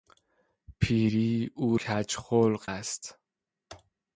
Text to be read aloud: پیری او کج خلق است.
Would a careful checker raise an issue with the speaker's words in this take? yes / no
no